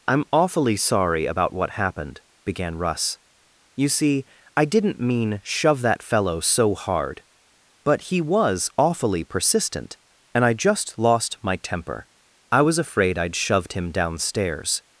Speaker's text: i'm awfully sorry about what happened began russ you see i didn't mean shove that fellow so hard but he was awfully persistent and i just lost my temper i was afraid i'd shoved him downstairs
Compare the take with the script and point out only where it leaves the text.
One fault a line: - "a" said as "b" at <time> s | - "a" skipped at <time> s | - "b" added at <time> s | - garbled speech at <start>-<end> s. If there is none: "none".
none